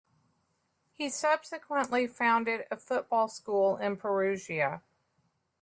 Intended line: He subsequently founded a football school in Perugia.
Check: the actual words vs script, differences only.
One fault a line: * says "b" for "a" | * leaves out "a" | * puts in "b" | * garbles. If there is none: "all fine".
all fine